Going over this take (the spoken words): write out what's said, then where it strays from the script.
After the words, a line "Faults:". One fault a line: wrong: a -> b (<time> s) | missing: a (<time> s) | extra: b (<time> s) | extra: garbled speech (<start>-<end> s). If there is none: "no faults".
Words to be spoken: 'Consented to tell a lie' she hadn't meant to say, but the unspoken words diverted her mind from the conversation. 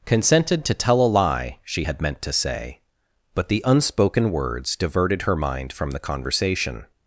'Consented to tell a lie' she had meant to say, but the unspoken words diverted her mind from the conversation.
Faults:
wrong: hadn't -> had (1.8 s)